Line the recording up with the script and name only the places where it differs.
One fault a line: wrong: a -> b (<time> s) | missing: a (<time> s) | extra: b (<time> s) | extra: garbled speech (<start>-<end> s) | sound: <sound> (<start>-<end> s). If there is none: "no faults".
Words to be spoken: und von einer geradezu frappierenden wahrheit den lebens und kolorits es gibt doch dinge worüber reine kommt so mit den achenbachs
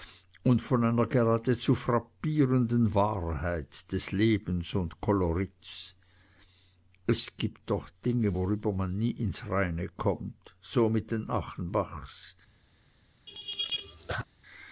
wrong: den -> des (3.9 s)
extra: man nie ins (8.7 s)
sound: laugh (13.3-14.2 s)